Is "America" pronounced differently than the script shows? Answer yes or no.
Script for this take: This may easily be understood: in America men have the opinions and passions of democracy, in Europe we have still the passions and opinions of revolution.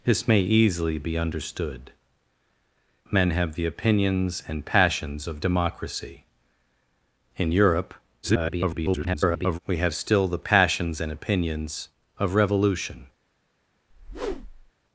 yes